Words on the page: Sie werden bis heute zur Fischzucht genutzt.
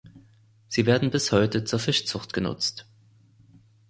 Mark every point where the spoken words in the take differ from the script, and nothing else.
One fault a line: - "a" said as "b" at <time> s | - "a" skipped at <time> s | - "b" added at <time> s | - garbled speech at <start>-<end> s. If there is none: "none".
none